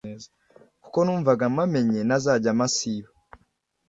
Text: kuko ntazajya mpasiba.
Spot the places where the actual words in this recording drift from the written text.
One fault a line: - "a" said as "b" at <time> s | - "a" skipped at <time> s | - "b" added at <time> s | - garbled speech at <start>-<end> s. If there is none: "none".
- "numvaga mpamenye" added at 1.1 s